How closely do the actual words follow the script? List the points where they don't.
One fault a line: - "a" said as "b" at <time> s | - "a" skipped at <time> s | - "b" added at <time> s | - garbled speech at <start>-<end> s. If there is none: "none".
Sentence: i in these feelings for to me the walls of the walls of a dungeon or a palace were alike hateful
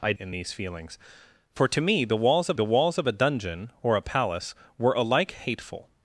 none